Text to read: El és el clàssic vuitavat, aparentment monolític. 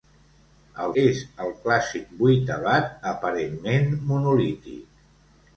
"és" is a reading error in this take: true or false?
false